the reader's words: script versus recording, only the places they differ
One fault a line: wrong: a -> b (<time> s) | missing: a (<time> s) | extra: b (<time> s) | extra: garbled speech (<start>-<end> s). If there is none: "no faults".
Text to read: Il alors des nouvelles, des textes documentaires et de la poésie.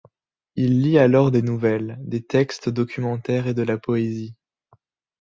extra: lit (0.8 s)